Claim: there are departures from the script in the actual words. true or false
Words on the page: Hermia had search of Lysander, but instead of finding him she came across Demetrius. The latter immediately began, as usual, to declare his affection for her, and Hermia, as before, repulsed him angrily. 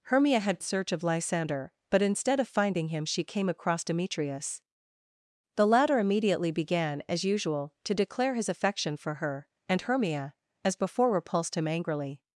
false